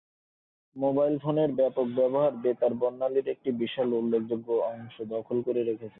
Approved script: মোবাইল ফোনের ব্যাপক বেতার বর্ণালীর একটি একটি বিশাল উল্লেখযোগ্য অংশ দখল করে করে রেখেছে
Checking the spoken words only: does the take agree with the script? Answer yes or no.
no